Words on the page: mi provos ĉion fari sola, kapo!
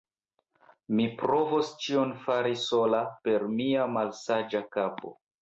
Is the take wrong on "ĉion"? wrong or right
right